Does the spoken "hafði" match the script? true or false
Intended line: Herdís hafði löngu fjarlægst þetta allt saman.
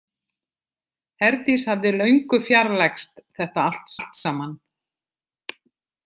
true